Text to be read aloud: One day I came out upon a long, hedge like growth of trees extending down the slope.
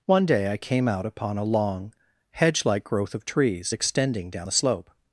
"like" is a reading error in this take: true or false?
false